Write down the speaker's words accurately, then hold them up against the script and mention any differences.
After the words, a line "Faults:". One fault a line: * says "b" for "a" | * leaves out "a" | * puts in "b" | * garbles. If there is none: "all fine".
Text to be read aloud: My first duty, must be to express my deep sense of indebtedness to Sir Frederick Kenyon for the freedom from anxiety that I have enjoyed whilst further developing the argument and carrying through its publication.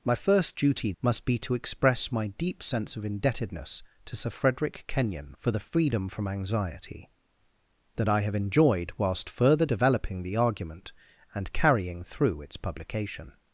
My first duty, must be to express my deep sense of indebtedness to Sir Frederick Kenyon for the freedom from anxiety that I have enjoyed whilst further developing the argument and carrying through its publication.
Faults:
all fine